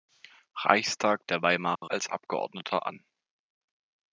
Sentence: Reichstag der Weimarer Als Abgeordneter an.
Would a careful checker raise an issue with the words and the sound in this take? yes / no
yes